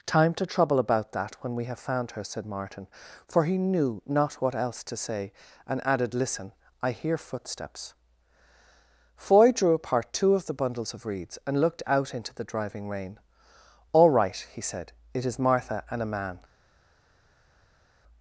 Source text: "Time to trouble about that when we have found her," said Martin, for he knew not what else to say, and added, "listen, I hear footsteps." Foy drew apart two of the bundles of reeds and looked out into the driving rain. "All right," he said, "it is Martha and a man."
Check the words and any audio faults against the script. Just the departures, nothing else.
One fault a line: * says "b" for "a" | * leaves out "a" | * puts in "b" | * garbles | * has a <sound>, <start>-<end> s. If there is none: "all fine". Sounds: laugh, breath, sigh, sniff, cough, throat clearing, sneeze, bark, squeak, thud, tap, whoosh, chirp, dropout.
all fine